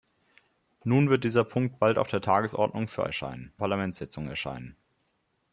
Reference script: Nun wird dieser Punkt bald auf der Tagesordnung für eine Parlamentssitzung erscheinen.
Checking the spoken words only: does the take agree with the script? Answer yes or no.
no